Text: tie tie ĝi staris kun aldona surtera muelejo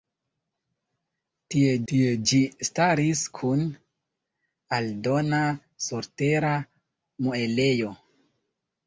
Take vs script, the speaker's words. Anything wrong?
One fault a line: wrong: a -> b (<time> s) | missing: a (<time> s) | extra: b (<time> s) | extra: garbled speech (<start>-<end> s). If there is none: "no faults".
no faults